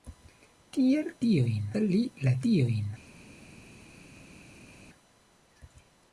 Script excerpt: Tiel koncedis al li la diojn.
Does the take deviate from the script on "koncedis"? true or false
true